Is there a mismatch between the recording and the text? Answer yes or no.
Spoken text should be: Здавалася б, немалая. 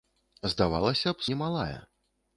no